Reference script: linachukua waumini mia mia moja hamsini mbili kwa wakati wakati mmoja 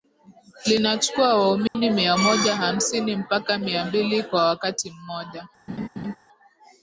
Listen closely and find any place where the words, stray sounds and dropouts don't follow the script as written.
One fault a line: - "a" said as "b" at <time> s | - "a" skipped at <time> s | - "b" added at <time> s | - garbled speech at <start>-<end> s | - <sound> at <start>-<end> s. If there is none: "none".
- dropout at 1.7-1.8 s
- "mia" skipped at 2.2 s
- "mpaka mia" added at 3.2 s
- "wakati" skipped at 4.9 s
- laugh at 5.7-6.2 s